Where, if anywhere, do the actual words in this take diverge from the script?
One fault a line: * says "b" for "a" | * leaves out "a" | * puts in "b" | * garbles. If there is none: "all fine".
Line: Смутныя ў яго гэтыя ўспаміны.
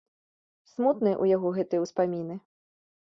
all fine